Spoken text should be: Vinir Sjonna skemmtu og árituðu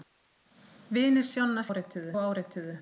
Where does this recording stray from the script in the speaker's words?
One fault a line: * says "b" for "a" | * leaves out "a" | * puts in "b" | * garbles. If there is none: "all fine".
* says "árituðu" for "skemmtu"